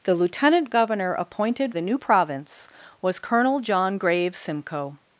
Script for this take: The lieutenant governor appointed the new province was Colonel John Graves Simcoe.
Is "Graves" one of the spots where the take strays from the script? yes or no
no